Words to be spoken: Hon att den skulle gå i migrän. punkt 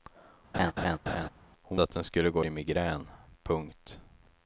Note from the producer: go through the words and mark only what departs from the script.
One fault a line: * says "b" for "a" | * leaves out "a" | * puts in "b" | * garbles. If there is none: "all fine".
all fine